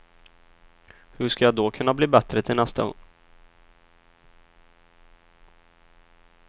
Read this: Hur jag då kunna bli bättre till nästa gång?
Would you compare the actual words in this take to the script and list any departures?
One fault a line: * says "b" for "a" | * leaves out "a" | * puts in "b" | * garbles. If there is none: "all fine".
* puts in "ska"